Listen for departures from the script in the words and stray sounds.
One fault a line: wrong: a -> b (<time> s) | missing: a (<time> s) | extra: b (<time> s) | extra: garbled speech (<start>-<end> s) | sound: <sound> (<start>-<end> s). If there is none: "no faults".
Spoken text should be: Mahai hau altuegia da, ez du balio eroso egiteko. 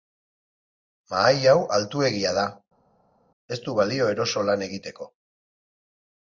extra: lan (4.5 s)